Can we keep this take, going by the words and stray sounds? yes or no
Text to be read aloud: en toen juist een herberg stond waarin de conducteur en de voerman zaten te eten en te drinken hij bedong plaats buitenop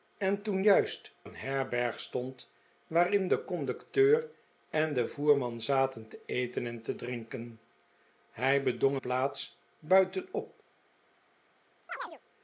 no